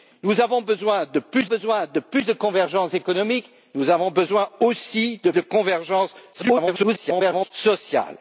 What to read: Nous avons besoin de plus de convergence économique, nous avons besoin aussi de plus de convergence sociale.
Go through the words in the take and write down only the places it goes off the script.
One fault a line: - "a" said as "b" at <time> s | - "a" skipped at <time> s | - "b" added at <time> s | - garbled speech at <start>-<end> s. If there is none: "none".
- "besoin" added at 1.4 s
- "plus de" added at 2.0 s
- "plus" skipped at 5.3 s
- garbled speech at 6.3-7.5 s